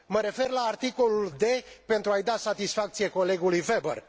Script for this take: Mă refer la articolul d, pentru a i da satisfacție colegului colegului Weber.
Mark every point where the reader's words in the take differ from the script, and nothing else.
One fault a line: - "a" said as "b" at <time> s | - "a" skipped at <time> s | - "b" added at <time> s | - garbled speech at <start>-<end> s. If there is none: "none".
- "colegului" skipped at 3.6 s